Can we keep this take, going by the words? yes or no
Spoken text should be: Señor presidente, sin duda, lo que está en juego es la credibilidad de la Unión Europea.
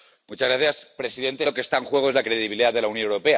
no